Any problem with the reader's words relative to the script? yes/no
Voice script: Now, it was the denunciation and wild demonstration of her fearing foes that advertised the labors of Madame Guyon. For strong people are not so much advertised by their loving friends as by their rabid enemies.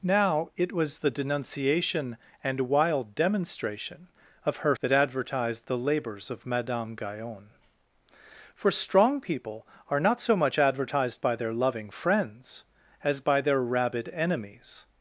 yes